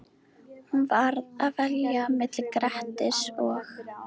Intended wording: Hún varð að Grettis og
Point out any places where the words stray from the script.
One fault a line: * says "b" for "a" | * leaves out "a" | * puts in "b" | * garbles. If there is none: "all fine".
* puts in "velja milli"